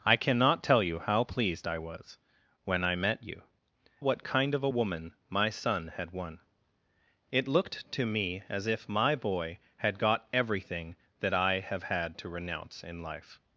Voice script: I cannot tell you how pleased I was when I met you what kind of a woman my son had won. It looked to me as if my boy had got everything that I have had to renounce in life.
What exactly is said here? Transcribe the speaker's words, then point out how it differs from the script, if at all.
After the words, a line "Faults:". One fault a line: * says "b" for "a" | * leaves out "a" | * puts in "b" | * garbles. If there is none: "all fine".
I cannot tell you how pleased I was when I met you what kind of a woman my son had won. It looked to me as if my boy had got everything that I have had to renounce in life.
Faults:
all fine